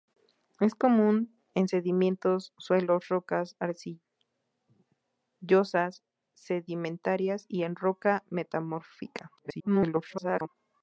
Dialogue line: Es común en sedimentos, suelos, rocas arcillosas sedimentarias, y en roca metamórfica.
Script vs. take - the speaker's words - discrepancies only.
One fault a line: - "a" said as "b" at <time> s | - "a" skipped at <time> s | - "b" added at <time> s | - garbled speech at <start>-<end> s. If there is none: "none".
- garbled speech at 9.4-10.5 s